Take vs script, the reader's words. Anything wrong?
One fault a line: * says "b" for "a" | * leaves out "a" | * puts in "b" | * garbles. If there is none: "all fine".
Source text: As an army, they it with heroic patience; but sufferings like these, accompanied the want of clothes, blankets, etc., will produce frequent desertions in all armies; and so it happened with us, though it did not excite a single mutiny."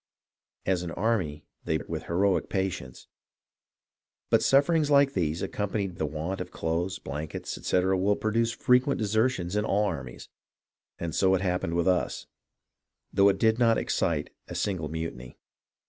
all fine